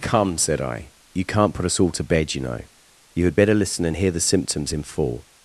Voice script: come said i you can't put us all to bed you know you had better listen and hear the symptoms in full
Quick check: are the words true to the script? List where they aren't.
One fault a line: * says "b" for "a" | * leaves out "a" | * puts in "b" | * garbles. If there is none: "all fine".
all fine